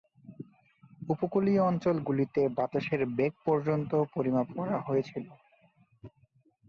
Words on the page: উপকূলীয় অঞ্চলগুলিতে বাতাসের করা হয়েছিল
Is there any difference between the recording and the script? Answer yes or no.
yes